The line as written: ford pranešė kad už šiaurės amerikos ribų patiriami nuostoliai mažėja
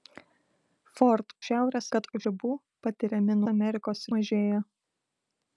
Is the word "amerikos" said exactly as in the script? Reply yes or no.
no